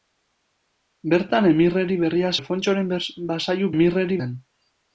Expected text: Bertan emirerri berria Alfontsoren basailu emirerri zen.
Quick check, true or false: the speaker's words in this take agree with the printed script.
true